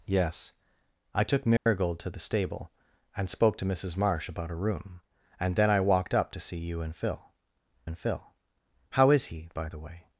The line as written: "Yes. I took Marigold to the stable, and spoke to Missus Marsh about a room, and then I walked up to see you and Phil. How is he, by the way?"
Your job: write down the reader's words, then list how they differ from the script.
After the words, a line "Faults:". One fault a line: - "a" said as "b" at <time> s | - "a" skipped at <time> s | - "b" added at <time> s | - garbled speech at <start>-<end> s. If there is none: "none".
"Yes. I took Marigold to the stable, and spoke to Missus Marsh about a room, and then I walked up to see you and Phil and Phil. How is he, by the way?"
Faults:
- "and Phil" added at 7.8 s